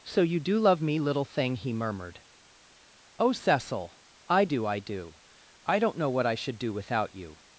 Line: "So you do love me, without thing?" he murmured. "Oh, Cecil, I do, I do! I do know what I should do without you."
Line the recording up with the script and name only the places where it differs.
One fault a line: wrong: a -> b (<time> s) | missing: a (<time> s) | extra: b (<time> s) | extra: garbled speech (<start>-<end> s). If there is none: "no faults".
wrong: without -> little (1.0 s)
wrong: do -> don't (5.8 s)